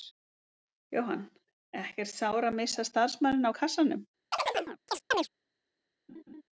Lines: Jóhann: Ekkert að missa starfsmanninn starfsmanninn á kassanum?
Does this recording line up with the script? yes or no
no